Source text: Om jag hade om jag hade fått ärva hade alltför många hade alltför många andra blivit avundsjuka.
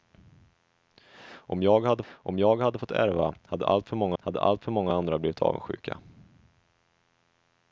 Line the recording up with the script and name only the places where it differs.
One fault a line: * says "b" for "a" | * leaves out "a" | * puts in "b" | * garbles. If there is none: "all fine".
all fine